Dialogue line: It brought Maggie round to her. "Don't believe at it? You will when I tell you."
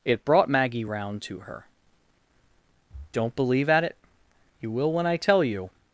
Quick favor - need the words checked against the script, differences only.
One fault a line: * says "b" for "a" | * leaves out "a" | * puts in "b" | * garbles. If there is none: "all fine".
all fine